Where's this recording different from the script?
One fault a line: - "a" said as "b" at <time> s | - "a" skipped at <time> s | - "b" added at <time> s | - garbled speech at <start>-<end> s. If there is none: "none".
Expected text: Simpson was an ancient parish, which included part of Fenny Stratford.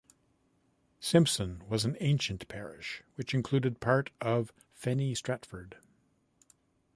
none